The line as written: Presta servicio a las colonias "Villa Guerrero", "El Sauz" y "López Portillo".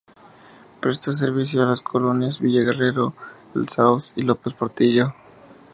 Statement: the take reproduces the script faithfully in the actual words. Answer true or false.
true